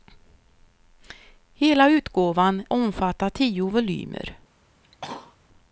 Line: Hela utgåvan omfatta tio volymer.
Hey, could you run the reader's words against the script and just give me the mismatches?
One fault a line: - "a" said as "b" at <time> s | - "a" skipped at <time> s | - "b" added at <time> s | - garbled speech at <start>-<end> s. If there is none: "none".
none